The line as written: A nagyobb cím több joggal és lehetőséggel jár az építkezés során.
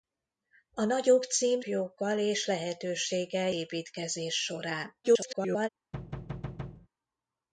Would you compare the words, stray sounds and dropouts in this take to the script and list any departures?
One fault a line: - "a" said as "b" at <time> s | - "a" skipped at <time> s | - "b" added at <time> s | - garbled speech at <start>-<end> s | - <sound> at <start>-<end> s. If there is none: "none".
- "több" skipped at 1.6 s
- "jár az" skipped at 3.5 s
- garbled speech at 5.0-5.7 s
- thud at 5.9-6.9 s